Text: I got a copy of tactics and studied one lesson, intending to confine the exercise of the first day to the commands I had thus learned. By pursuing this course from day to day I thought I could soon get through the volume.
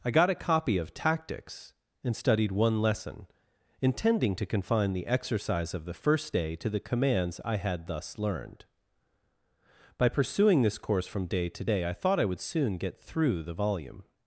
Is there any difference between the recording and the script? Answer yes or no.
yes